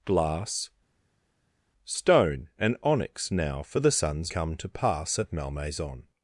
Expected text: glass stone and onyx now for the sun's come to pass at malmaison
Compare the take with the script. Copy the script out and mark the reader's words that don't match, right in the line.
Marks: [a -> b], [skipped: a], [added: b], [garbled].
glass stone and onyx now for the sun's come to pass at malmaison